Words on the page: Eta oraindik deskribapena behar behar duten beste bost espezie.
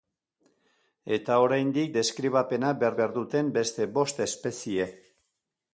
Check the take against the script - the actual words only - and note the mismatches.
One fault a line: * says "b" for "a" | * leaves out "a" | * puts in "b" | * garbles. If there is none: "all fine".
all fine